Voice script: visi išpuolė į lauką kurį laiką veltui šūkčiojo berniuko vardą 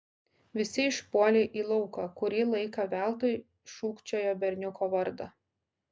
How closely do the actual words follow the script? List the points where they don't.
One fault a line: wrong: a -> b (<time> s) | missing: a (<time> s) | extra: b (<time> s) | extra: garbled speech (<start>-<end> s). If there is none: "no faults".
no faults